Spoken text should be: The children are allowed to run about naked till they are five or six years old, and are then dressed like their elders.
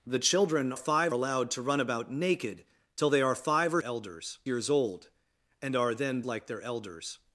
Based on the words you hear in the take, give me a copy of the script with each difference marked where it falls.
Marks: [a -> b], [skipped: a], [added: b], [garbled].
The children [are -> five] allowed to run about naked till they are five or [six -> elders] years old, and are then [skipped: dressed] like their elders.